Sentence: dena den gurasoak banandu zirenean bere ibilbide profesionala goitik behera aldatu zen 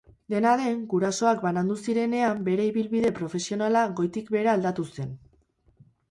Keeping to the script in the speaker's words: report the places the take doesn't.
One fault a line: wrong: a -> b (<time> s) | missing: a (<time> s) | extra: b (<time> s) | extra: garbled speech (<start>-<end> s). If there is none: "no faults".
no faults